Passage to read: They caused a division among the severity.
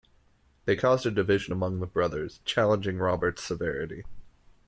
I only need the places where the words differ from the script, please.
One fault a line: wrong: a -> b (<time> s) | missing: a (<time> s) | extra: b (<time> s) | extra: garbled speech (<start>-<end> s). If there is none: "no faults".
extra: brothers challenging Robert's (1.9 s)